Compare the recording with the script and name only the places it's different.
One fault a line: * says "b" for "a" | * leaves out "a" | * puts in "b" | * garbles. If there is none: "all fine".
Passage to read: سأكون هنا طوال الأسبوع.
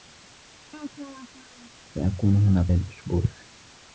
* leaves out "طوال"